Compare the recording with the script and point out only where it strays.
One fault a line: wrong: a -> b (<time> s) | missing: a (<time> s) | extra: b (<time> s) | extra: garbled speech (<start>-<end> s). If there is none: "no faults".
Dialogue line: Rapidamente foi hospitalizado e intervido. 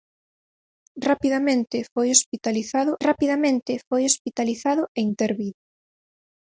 extra: rapidamente foi hospitalizado (3.1 s)